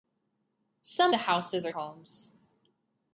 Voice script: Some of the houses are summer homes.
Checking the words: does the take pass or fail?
fail